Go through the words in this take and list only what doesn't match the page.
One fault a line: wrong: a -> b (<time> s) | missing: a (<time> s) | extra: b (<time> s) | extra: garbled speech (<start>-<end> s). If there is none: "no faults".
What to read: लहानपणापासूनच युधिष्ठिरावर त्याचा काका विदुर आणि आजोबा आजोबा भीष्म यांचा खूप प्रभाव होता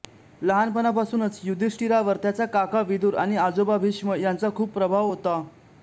missing: आजोबा (3.8 s)